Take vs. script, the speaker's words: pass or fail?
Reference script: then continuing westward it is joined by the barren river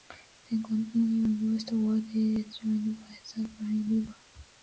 pass